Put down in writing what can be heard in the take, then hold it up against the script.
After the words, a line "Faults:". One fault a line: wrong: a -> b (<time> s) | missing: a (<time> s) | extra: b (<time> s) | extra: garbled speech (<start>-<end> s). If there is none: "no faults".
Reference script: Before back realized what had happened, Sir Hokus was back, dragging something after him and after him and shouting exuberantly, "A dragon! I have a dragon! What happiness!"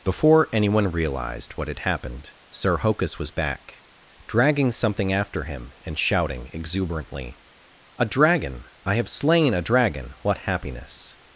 Before anyone realized what had happened, Sir Hokus was back, dragging something after him and shouting exuberantly, "A dragon! I have slain a dragon! What happiness!"
Faults:
wrong: back -> anyone (0.5 s)
missing: after him and (6.0 s)
extra: slain (9.1 s)